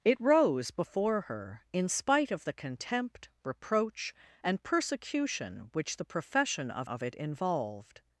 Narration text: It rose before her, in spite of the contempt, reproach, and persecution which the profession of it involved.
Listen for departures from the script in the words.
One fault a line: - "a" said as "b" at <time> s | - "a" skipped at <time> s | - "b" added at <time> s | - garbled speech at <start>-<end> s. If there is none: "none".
- "of" added at 6.8 s